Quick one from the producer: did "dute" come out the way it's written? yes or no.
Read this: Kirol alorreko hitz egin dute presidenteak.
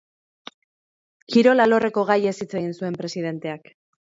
no